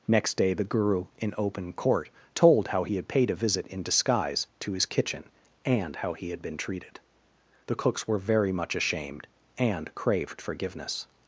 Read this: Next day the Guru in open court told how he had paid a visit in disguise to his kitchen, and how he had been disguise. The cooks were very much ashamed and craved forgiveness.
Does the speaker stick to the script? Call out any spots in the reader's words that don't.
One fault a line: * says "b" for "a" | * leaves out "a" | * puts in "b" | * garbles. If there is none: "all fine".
* says "treated" for "disguise"